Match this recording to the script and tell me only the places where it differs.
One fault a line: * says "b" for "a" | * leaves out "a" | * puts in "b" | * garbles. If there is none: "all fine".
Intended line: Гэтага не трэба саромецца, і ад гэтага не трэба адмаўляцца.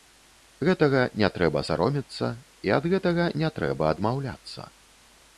all fine